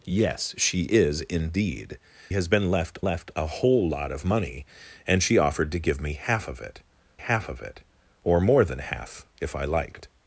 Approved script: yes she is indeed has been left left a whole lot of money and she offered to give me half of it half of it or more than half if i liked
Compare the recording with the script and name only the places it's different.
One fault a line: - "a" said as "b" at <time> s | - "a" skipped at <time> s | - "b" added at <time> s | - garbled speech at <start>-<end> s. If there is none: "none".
none